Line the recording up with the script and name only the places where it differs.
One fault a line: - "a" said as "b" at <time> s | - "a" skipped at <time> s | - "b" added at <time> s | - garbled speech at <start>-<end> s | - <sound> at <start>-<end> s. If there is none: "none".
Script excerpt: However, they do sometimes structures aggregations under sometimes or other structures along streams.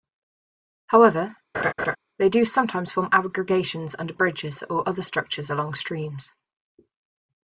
- laugh at 1.5-2.0 s
- "structures" said as "form" at 2.9 s
- "sometimes" said as "bridges" at 4.1 s